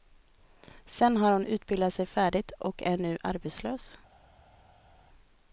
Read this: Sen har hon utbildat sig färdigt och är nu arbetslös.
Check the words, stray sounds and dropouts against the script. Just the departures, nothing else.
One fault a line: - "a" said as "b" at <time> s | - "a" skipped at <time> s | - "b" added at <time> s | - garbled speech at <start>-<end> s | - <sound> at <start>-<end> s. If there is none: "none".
none